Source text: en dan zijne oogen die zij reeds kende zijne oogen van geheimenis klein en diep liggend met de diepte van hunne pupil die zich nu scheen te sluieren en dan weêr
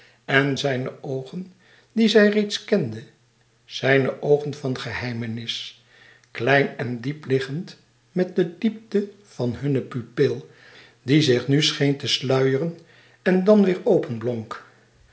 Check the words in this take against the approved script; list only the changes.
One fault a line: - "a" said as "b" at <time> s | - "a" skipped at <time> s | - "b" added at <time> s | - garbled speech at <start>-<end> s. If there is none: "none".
- "dan" skipped at 0.6 s